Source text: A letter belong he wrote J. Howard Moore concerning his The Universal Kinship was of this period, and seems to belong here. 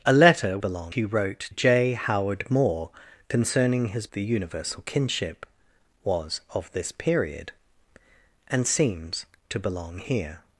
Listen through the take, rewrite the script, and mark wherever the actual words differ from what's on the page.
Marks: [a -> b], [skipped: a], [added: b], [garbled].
A letter belong he wrote J. Howard Moore concerning his The Universal Kinship was of this period, and seems to belong here.